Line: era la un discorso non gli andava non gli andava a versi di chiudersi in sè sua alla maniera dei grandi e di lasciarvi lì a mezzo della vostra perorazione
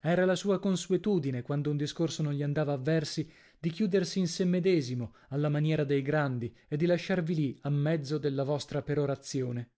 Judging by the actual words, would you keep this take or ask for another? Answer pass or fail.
fail